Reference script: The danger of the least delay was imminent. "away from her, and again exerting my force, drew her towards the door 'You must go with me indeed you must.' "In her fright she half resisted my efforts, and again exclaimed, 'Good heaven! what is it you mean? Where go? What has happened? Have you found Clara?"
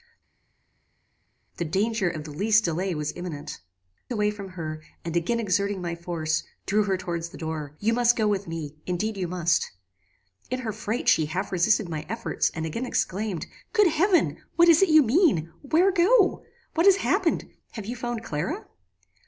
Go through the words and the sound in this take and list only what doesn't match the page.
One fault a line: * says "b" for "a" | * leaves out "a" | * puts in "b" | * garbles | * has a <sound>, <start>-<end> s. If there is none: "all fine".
all fine